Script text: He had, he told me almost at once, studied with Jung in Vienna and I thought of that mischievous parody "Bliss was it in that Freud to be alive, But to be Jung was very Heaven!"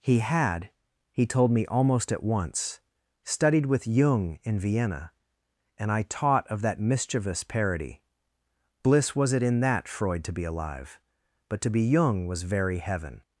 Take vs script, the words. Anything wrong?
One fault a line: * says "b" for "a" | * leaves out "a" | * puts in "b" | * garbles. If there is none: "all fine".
* says "taught" for "thought"